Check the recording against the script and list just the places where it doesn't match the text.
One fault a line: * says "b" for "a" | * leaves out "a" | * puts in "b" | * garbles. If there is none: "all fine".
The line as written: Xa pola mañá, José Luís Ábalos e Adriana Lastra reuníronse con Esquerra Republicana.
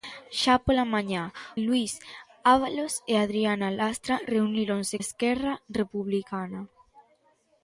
* leaves out "José"
* leaves out "con"